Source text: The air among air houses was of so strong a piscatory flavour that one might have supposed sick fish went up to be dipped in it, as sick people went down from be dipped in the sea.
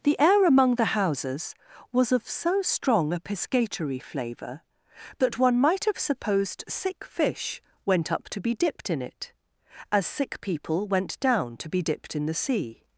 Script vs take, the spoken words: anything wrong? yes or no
yes